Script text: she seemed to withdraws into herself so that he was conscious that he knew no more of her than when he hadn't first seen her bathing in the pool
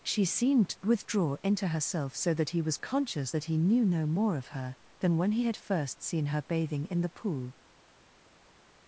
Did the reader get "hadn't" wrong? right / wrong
wrong